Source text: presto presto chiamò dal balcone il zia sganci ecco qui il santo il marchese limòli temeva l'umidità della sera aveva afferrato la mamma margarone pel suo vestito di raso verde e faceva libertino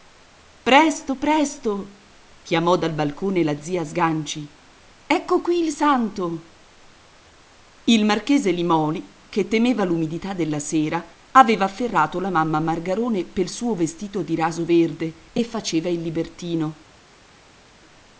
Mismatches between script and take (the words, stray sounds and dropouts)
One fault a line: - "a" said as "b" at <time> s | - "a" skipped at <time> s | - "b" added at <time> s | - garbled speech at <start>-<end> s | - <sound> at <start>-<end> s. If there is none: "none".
- "il" said as "la" at 3.4 s
- "che" added at 9.3 s
- "il" added at 15.9 s